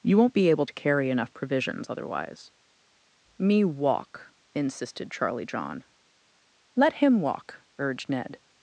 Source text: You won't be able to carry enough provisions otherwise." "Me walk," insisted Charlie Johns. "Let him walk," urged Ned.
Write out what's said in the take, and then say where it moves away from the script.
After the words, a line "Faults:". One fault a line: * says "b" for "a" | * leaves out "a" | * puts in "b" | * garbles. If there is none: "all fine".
You won't be able to carry enough provisions otherwise." "Me walk," insisted Charlie John. "Let him walk," urged Ned.
Faults:
* says "John" for "Johns"